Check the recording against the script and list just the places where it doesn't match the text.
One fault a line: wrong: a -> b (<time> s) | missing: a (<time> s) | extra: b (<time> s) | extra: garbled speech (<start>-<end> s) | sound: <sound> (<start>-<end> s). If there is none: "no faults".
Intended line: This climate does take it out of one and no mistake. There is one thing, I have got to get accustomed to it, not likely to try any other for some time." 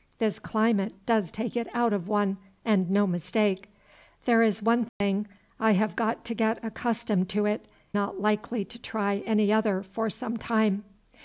sound: dropout (4.9-5.0 s)